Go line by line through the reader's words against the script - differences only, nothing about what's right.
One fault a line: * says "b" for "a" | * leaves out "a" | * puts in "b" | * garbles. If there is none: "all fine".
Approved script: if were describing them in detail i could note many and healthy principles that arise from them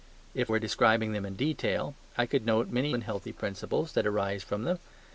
all fine